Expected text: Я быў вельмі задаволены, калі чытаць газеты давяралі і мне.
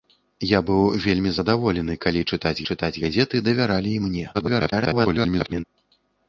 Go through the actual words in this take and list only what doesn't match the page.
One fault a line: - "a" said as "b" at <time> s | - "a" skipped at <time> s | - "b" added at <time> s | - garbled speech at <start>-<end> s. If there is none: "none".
- "чытаць" added at 2.7 s
- garbled speech at 4.3-5.6 s